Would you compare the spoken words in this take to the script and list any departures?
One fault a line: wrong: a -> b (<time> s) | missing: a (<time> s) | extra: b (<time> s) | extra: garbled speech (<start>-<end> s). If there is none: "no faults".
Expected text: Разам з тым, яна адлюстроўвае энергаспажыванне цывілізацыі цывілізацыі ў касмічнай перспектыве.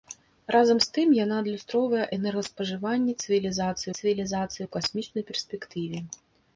no faults